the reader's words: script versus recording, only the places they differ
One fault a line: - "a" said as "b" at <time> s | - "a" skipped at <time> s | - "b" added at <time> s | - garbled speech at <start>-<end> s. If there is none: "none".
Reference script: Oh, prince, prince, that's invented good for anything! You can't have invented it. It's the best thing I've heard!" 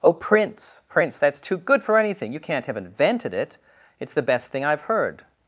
- "invented" said as "too" at 1.4 s